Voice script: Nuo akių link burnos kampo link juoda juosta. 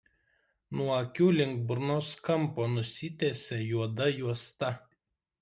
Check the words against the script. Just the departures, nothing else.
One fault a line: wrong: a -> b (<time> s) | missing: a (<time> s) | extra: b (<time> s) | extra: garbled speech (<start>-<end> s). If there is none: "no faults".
wrong: link -> nusitęsia (2.7 s)